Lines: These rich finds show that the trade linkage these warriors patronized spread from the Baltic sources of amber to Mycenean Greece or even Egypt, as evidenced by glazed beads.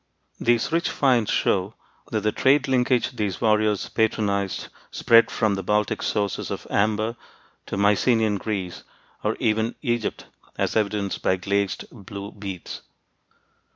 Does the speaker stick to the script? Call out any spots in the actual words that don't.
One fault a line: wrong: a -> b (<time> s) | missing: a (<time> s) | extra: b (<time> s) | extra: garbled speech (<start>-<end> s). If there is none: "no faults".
extra: blue (11.9 s)